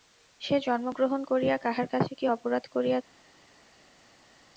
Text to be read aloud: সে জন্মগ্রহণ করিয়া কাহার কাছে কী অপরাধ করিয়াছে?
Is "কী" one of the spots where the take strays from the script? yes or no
no